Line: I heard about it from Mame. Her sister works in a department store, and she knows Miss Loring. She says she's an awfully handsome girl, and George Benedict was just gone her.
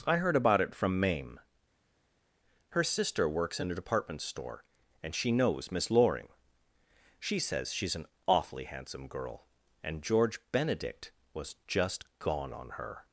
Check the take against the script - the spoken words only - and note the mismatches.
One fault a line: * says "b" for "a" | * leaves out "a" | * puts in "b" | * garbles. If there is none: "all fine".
* puts in "on"